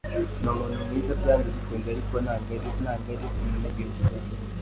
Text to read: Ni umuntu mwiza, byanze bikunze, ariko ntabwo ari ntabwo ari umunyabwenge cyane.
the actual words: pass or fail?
pass